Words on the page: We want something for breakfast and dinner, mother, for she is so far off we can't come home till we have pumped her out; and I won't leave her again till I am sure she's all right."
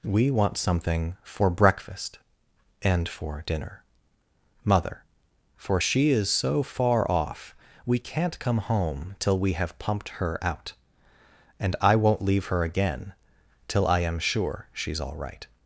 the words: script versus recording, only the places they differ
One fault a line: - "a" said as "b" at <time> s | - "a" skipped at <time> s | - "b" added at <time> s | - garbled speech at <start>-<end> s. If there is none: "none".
- "for" added at 3.1 s